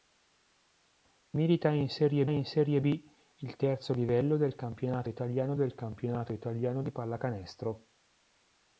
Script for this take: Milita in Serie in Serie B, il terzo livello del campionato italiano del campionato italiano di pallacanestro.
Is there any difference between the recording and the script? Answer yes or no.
no